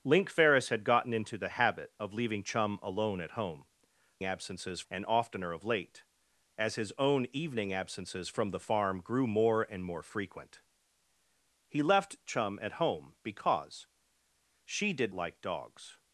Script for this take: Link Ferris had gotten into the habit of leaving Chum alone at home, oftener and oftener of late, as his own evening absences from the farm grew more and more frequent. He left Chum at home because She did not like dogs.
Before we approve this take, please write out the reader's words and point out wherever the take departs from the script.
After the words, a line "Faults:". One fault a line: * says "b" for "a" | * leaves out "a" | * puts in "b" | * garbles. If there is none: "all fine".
Link Ferris had gotten into the habit of leaving Chum alone at home, absences and oftener of late, as his own evening absences from the farm grew more and more frequent. He left Chum at home because She did like dogs.
Faults:
* says "absences" for "oftener"
* leaves out "not"